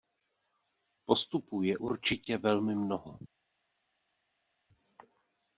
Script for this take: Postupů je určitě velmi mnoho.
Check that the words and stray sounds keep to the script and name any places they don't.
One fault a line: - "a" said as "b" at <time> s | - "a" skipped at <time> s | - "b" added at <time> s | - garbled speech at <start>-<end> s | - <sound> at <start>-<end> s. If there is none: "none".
none